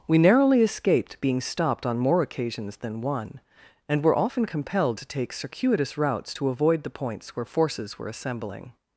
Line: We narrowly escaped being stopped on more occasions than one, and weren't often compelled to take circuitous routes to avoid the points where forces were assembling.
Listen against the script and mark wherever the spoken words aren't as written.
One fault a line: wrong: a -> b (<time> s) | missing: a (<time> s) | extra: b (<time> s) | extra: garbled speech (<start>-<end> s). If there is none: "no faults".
wrong: weren't -> were (4.0 s)